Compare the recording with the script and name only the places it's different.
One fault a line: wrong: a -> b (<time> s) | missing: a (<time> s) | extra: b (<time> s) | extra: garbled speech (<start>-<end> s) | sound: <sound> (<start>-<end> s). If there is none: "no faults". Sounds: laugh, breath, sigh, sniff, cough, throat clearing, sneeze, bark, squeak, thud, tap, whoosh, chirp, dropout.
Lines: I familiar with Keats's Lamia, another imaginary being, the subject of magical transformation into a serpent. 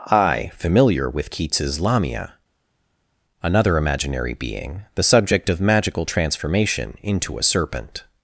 no faults